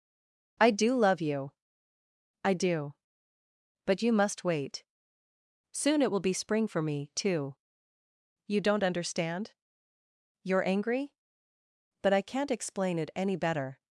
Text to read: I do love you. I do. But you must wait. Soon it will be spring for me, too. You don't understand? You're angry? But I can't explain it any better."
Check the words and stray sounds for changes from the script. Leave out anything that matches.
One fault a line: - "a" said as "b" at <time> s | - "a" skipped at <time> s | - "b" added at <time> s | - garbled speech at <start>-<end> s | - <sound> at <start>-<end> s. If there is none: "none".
none